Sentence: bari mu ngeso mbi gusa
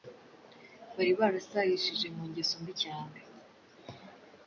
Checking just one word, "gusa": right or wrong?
wrong